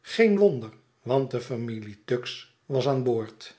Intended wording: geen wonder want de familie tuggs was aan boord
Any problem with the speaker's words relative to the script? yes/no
no